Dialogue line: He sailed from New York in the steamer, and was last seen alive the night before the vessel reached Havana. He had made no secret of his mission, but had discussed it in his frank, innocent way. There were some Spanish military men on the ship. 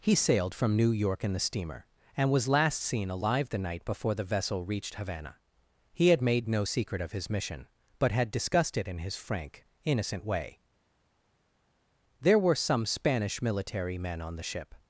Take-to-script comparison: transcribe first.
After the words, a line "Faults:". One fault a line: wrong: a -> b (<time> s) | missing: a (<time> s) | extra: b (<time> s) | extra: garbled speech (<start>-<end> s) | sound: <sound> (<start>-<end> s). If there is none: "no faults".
He sailed from New York in the steamer, and was last seen alive the night before the vessel reached Havana. He had made no secret of his mission, but had discussed it in his frank, innocent way. There were some Spanish military men on the ship.
Faults:
no faults